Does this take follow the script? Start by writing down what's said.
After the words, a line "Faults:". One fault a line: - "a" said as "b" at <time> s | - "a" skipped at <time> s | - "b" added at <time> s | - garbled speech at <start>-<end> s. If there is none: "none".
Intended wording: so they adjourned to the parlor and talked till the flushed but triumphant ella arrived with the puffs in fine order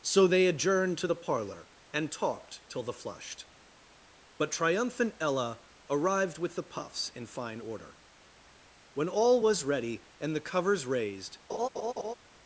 so they adjourned to the parlor and talked till the flushed but triumphant ella arrived with the puffs in fine order when all was ready and the covers raised
Faults:
- "when all was ready and the covers raised" added at 8.9 s